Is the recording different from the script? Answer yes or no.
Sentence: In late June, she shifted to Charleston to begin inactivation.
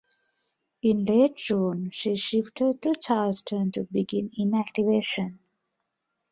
no